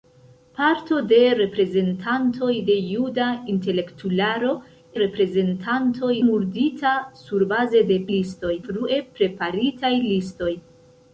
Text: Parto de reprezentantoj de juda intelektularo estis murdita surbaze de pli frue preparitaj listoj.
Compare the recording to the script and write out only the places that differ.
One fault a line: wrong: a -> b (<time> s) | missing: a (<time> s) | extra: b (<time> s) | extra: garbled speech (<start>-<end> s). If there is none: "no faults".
wrong: estis -> reprezentantoj (5.0 s)
wrong: pli -> listoj (8.2 s)